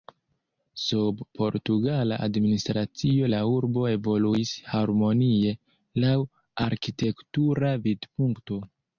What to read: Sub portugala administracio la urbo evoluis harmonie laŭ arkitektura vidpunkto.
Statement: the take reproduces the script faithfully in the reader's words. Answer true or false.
true